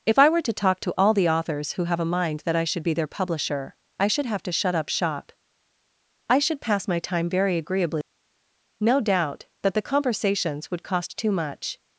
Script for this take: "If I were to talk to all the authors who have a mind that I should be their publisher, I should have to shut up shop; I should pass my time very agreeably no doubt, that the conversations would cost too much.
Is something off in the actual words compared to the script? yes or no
no